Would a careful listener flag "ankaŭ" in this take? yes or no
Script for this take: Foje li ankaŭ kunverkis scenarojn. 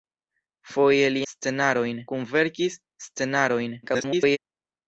yes